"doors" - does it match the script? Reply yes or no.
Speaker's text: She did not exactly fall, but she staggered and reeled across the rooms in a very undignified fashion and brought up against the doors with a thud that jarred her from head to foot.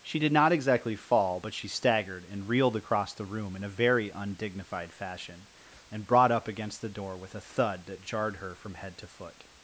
no